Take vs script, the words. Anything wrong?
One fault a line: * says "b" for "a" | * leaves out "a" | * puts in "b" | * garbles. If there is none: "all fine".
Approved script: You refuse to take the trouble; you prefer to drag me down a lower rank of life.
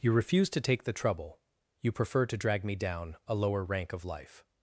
all fine